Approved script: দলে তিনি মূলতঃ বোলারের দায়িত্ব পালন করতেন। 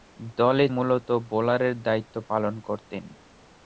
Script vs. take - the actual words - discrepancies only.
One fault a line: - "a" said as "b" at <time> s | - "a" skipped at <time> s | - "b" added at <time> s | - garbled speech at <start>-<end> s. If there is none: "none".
- "তিনি" skipped at 0.7 s